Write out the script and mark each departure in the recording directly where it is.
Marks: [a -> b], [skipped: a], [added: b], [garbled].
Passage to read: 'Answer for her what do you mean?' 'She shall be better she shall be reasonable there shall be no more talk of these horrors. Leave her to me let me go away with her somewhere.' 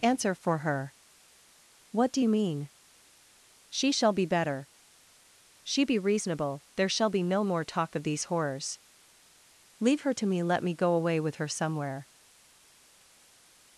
'Answer for her what do you mean?' 'She shall be better she [skipped: shall] be reasonable there shall be no more talk of these horrors. Leave her to me let me go away with her somewhere.'